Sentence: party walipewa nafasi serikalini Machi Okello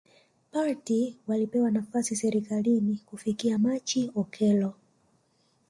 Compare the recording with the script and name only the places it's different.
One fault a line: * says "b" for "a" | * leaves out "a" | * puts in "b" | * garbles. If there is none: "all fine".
* puts in "Kufikia"